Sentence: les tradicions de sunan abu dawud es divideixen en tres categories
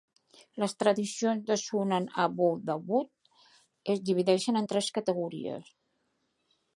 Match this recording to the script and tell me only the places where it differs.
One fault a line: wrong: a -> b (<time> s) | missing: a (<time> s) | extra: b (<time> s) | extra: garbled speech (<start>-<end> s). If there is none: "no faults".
no faults